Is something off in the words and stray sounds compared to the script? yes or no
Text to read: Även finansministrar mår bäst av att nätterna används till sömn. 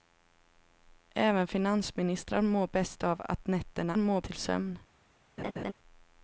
yes